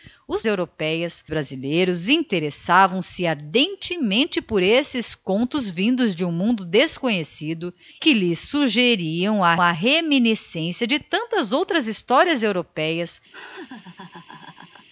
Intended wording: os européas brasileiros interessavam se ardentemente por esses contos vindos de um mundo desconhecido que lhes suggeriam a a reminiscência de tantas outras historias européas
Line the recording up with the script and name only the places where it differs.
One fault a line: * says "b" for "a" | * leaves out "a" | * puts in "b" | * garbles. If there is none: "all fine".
all fine